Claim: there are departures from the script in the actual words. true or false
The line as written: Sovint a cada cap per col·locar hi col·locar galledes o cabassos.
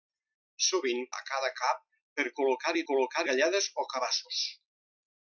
false